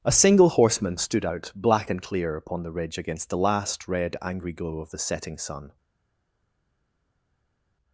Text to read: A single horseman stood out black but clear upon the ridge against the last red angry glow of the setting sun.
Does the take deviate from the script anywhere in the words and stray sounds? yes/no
yes